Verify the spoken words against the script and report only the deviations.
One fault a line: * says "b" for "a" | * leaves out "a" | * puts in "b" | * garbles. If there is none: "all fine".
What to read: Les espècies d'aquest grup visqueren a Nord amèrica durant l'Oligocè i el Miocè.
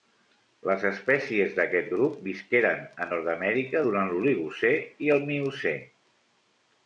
all fine